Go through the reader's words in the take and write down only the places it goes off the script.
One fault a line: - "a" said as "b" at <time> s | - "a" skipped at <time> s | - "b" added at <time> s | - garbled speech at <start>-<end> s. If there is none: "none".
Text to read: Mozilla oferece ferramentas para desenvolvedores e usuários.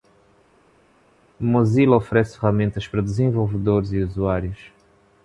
none